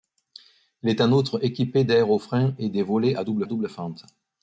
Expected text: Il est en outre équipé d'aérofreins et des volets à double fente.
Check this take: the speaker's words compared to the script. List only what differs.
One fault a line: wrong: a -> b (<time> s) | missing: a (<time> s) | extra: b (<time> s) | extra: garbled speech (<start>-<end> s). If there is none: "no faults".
extra: double (3.4 s)